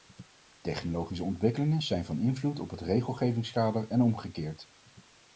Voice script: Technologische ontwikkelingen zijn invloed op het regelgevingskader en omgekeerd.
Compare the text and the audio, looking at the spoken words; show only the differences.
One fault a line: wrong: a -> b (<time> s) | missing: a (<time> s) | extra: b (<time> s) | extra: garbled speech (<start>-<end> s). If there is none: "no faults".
extra: van (2.0 s)